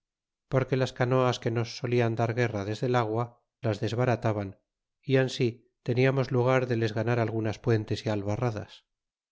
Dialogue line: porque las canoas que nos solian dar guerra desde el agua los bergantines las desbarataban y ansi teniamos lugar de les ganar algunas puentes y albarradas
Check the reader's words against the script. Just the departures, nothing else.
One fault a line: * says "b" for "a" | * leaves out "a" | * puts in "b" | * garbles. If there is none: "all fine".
* leaves out "los bergantines"